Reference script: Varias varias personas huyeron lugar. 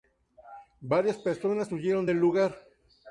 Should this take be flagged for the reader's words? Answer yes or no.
yes